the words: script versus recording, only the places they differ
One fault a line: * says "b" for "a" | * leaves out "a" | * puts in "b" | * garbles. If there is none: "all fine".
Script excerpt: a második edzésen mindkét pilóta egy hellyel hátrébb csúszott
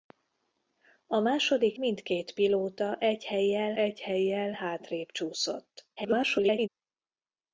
* leaves out "edzésen"
* puts in "egy hellyel"
* garbles